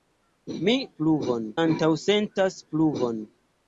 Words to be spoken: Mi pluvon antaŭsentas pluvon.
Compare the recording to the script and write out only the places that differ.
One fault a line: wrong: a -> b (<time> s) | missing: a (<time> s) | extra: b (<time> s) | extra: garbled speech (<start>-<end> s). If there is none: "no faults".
no faults